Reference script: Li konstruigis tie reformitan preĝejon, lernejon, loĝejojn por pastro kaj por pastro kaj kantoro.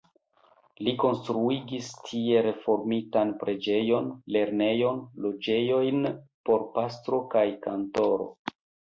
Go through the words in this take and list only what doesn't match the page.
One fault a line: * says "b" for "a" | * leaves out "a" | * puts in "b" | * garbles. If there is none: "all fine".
* leaves out "por pastro kaj"